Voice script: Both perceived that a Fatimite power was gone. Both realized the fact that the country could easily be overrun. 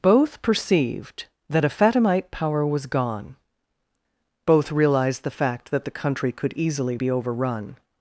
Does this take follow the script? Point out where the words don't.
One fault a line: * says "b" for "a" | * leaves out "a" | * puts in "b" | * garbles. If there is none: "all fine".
all fine